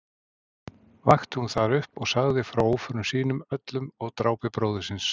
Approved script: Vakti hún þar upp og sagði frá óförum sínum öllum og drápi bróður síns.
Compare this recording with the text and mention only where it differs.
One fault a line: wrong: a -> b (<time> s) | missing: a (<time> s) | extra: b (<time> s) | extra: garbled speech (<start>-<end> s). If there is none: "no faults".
no faults